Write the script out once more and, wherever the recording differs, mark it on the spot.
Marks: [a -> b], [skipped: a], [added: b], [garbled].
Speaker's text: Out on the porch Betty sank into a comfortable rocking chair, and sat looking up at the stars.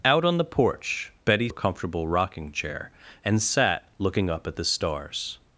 Out on the porch Betty [skipped: sank into] a comfortable rocking chair, and sat looking up at the stars.